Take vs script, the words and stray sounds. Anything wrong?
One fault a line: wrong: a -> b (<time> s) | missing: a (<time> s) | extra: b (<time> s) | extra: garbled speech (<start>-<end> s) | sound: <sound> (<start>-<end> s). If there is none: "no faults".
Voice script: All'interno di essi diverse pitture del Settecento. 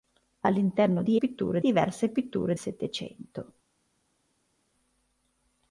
wrong: essi -> pitture (1.2 s)
missing: del (2.5 s)